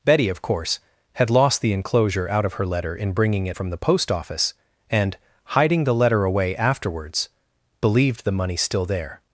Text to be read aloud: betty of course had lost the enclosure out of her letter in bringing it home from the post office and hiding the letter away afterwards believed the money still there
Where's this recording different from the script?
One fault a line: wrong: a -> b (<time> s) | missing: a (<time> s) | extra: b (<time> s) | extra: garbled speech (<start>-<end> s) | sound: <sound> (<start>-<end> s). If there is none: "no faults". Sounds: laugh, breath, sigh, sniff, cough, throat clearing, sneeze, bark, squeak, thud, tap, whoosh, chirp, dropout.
missing: home (3.6 s)